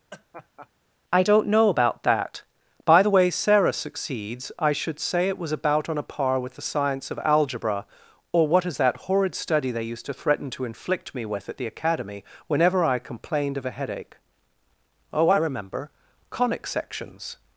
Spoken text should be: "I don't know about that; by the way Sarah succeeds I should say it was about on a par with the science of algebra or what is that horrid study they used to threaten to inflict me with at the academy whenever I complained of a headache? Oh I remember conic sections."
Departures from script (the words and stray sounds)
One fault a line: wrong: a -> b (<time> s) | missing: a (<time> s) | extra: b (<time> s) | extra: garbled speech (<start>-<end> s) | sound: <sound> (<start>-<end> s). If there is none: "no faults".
sound: laugh (0.1-0.7 s)